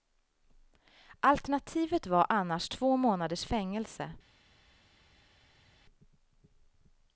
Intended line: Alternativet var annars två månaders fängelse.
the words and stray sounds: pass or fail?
pass